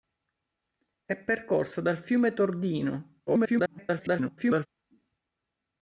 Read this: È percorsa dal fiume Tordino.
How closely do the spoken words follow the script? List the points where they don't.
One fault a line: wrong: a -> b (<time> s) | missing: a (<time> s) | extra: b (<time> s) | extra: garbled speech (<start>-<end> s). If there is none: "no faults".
extra: garbled speech (3.3-4.7 s)